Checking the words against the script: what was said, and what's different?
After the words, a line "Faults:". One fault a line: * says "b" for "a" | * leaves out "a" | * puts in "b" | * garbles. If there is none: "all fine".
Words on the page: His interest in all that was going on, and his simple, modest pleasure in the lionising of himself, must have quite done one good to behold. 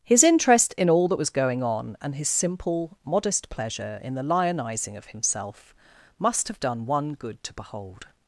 His interest in all that was going on, and his simple, modest pleasure in the lionising of himself, must have done one good to behold.
Faults:
* leaves out "quite"